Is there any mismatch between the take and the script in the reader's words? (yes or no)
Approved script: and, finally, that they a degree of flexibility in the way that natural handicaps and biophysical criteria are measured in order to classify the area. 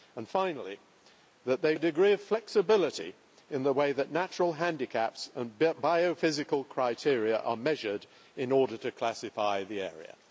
no